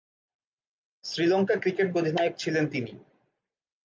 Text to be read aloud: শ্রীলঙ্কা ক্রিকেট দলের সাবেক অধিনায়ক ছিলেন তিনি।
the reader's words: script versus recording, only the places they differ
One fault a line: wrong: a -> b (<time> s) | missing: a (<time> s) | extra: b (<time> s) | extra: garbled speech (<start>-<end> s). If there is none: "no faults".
missing: দলের সাবেক (1.9 s)